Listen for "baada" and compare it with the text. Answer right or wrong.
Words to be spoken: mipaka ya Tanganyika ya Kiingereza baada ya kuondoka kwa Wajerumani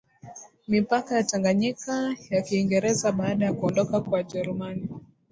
right